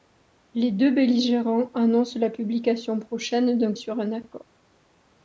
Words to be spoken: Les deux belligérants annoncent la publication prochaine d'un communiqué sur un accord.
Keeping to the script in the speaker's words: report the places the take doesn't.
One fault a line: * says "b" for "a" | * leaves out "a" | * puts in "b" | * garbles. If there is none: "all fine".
* leaves out "communiqué"